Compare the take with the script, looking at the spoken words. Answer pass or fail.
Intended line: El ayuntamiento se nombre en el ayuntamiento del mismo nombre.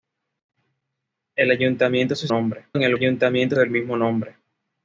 pass